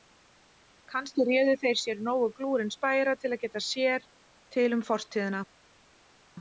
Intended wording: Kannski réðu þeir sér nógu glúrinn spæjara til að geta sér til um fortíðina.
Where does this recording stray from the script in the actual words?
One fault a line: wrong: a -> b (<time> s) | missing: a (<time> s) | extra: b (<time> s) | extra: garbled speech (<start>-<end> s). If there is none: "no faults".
no faults